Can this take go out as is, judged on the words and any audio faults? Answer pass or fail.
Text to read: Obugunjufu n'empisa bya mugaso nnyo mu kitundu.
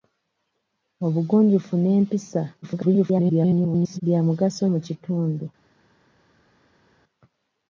fail